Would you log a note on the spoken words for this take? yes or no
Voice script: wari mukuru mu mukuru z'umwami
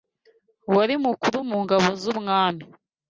yes